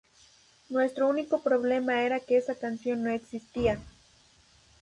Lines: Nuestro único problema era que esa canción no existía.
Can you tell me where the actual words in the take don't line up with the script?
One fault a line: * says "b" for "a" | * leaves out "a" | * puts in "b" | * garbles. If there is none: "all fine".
all fine